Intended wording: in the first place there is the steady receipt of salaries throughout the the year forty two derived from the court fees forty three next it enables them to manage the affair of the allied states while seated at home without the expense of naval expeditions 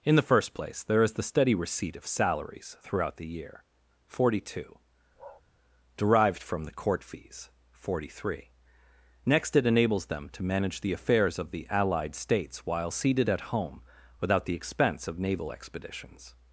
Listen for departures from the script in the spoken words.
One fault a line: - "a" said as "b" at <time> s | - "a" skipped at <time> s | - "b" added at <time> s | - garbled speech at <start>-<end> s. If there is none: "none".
- "the" skipped at 3.3 s
- "affair" said as "affairs" at 10.9 s